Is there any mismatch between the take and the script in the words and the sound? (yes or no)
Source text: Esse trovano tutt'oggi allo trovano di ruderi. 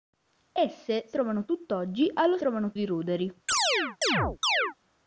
yes